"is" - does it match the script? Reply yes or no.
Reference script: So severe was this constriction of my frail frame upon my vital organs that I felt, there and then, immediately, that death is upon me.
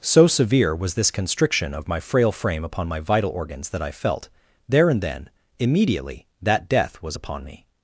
no